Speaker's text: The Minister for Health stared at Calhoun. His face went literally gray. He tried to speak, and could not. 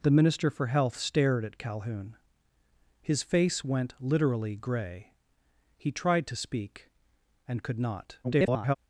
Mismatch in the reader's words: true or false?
true